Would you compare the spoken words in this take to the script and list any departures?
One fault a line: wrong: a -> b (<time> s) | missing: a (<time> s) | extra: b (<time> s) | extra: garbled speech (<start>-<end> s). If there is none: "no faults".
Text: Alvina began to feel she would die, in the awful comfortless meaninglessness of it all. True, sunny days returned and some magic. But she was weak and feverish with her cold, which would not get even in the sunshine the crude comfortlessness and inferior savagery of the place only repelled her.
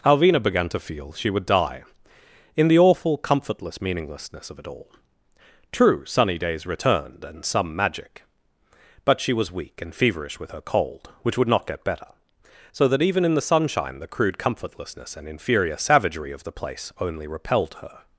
extra: better So that (11.8 s)